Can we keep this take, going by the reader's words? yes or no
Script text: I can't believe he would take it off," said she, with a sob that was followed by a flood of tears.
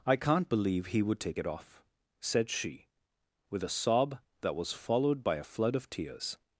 yes